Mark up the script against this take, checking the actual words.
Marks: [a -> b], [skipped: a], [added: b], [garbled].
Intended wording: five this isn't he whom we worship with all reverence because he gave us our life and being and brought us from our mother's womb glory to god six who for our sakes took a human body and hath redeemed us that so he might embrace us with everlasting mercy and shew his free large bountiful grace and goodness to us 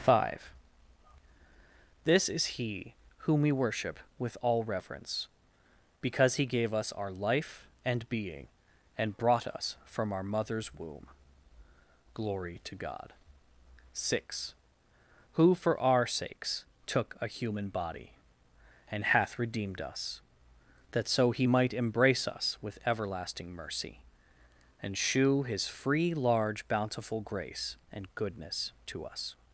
five this [isn't -> is] he whom we worship with all reverence because he gave us our life and being and brought us from our mother's womb glory to god six who for our sakes took a human body and hath redeemed us that so he might embrace us with everlasting mercy and shew his free large bountiful grace and goodness to us